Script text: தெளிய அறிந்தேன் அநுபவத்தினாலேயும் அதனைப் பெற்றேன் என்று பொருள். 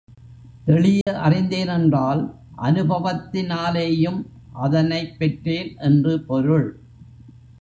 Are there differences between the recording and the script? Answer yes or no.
yes